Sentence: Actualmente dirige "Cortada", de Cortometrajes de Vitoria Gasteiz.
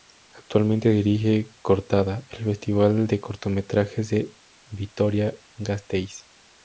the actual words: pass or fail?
fail